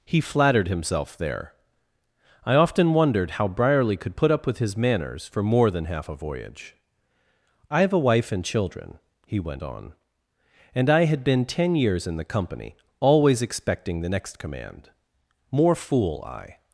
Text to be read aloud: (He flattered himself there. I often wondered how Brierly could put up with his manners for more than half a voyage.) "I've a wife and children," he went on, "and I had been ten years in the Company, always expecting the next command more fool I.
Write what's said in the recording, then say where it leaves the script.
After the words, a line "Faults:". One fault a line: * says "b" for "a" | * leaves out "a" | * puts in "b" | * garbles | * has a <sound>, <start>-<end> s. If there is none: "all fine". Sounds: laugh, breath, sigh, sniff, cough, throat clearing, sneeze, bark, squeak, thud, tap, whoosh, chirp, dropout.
(He flattered himself there. I often wondered how Brierly could put up with his manners for more than half a voyage.) "I've a wife and children," he went on, "and I had been ten years in the Company, always expecting the next command more fool I.
Faults:
all fine